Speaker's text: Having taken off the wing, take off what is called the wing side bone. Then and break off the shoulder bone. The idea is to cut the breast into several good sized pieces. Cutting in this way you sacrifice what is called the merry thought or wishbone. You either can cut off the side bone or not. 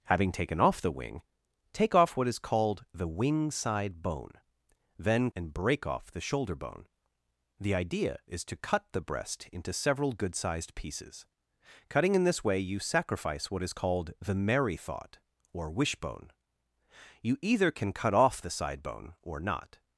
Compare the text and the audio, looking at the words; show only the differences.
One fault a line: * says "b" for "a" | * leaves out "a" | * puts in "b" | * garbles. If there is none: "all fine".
all fine